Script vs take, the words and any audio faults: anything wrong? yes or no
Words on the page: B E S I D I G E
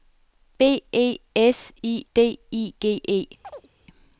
yes